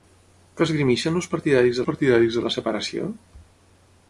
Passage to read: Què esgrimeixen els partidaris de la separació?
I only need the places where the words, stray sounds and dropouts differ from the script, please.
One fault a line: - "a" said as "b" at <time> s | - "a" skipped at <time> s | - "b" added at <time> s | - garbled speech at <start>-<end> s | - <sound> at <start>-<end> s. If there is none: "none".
- "partidaris" added at 1.9 s